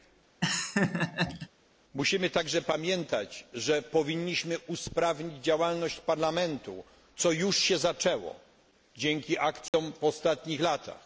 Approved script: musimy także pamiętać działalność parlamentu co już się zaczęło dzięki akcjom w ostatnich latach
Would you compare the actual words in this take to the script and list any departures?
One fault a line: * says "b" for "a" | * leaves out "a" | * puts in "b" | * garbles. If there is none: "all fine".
* puts in "że powinniśmy usprawnić"